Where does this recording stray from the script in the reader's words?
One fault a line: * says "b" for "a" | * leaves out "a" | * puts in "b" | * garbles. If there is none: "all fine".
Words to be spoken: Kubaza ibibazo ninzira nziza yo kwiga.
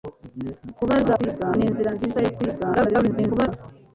* says "kwiga" for "ibibazo"
* garbles